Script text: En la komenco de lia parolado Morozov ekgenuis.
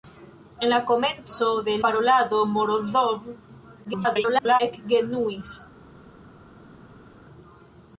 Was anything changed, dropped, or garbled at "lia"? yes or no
yes